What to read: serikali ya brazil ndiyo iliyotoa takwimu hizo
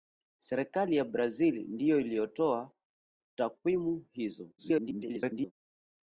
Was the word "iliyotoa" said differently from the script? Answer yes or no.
no